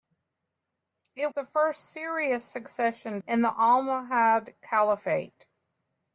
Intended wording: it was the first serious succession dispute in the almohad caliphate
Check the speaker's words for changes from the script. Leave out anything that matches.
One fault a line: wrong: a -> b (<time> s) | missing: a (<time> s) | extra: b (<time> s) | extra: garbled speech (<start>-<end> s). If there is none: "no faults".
missing: was (1.3 s)
missing: dispute (3.2 s)